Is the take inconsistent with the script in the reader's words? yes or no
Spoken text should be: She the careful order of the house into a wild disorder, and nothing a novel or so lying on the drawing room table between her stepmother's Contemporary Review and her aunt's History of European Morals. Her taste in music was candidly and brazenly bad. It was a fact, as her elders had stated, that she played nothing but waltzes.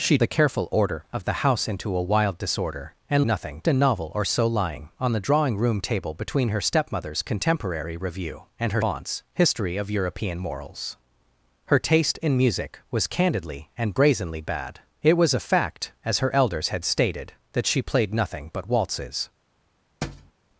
no